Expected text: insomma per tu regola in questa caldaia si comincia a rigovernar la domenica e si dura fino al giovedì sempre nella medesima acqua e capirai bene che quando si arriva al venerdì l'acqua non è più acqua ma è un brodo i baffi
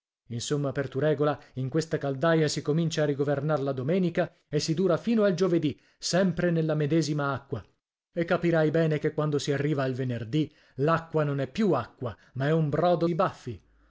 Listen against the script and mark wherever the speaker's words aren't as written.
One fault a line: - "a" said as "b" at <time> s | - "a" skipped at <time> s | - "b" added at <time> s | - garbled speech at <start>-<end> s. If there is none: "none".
none